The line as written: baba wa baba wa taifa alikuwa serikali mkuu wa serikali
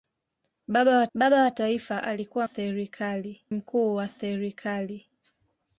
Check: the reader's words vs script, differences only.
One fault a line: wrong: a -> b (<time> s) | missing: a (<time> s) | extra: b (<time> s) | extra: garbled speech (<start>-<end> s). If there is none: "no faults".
no faults